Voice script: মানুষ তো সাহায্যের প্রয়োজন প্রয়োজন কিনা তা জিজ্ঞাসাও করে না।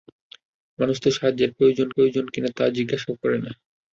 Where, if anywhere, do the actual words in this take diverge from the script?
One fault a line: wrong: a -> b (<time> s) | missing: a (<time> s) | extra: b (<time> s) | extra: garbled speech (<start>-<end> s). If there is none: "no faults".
no faults